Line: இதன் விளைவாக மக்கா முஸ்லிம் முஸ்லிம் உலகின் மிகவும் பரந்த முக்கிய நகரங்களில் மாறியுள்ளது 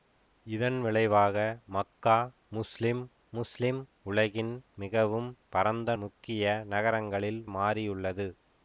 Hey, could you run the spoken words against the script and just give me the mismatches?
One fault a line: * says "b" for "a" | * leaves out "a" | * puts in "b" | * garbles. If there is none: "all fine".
all fine